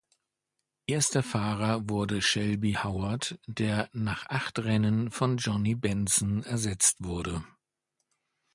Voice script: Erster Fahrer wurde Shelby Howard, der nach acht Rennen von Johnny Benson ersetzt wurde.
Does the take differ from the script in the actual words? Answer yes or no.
no